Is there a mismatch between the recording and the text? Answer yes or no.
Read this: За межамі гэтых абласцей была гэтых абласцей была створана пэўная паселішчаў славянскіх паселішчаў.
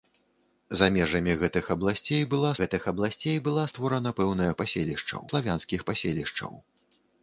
no